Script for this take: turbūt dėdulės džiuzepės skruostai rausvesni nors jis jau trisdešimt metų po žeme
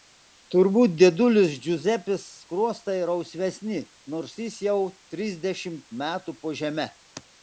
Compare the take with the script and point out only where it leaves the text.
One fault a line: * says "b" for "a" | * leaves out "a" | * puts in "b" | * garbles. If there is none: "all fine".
all fine